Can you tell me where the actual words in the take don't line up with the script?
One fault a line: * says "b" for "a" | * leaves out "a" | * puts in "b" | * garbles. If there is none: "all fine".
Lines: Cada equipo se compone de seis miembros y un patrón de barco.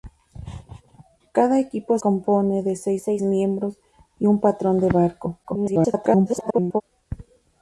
* leaves out "se"
* puts in "seis"
* garbles